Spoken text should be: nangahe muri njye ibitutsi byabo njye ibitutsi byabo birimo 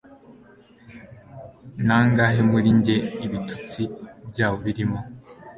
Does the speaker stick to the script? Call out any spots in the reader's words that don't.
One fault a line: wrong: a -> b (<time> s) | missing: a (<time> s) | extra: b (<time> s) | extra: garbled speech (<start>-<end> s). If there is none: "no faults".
missing: njye ibitutsi byabo (4.6 s)